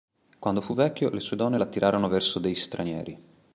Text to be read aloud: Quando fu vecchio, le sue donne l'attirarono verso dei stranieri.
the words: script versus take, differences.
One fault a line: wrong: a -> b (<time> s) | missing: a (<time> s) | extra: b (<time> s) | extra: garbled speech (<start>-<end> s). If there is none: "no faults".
no faults